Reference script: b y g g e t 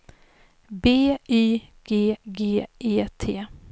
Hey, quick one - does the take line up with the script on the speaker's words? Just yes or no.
yes